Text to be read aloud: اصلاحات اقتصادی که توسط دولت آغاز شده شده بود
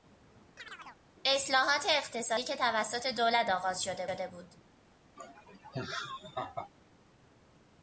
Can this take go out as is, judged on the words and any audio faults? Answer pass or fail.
fail